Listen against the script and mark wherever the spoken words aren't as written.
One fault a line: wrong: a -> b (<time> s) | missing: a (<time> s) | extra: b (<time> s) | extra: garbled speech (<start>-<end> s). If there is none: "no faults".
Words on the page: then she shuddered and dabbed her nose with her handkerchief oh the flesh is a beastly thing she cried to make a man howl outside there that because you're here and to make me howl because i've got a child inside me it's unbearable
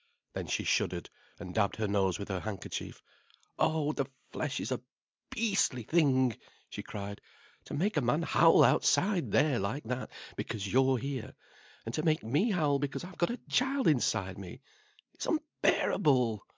extra: like (9.6 s)